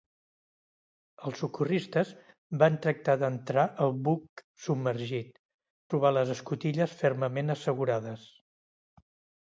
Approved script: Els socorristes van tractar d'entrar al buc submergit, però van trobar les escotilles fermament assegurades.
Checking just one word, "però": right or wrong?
wrong